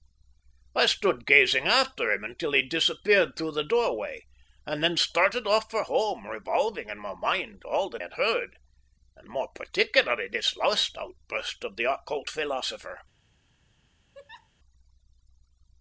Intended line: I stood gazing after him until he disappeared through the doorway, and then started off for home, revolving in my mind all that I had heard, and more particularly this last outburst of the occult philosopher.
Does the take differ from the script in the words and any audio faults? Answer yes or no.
yes